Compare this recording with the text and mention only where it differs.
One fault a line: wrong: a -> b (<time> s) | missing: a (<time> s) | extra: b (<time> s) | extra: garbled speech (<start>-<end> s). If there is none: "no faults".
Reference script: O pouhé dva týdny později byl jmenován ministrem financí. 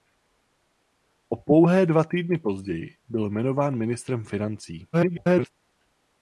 extra: garbled speech (4.9-5.5 s)